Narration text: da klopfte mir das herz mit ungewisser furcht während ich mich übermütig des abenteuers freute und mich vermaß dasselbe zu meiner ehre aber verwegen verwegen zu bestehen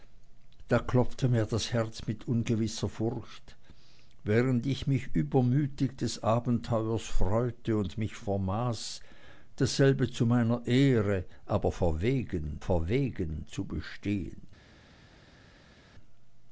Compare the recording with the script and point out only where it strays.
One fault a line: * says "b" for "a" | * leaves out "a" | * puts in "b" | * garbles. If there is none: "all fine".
all fine